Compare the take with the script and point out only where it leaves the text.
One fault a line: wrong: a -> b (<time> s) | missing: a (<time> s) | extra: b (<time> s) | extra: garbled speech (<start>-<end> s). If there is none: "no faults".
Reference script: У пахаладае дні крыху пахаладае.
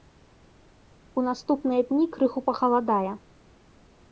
wrong: пахаладае -> наступныя (1.3 s)